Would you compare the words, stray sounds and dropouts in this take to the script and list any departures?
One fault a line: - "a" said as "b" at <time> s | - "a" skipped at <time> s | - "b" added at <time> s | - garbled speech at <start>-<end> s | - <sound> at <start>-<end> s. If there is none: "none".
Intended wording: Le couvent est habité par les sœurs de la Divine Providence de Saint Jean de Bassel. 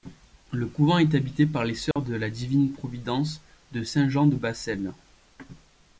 - dropout at 1.9-2.0 s